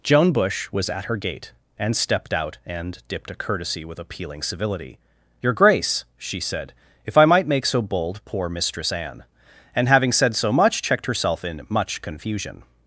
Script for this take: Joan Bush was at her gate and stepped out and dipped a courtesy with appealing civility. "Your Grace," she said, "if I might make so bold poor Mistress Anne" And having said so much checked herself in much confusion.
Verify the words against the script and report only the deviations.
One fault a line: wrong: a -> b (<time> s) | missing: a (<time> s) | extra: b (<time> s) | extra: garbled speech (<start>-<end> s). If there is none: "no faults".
no faults